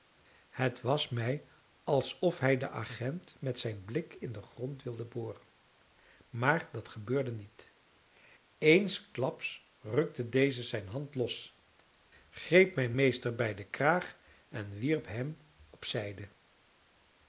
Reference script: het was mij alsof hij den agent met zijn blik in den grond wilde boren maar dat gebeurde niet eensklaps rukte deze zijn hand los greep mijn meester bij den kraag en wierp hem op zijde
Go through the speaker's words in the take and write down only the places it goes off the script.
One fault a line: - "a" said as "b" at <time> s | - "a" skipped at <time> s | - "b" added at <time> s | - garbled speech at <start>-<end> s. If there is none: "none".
none